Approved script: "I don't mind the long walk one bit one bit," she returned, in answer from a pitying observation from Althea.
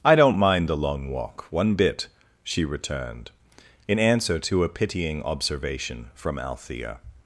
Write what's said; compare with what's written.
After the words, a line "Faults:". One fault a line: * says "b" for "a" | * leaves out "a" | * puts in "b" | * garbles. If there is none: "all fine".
"I don't mind the long walk one bit," she returned, in answer to a pitying observation from Althea.
Faults:
* leaves out "one bit"
* says "to" for "from"